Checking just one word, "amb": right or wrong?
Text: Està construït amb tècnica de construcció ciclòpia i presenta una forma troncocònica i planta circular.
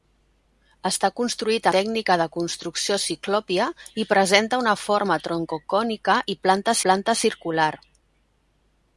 wrong